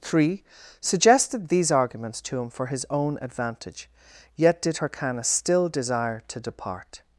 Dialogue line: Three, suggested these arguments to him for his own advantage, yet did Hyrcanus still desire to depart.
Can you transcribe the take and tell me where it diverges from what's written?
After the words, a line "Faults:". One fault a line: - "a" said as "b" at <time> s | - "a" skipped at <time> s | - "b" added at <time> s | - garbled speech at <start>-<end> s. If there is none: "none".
Three, suggested these arguments to him for his own advantage, yet did Hyrcanus still desire to depart.
Faults:
none